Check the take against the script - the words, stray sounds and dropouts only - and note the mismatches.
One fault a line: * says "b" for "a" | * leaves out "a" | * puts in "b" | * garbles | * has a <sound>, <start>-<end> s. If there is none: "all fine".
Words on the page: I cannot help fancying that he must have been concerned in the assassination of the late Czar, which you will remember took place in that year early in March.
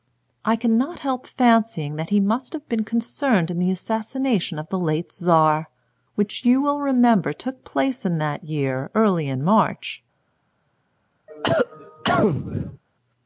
* has a cough, 11.3-12.8 s